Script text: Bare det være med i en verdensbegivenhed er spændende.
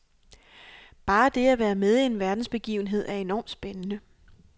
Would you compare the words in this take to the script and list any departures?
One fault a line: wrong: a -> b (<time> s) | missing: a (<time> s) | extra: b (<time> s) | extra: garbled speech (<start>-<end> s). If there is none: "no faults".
extra: at (1.5 s)
extra: enormt (3.1 s)